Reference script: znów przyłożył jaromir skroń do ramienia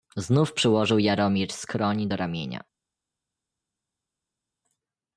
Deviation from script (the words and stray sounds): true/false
false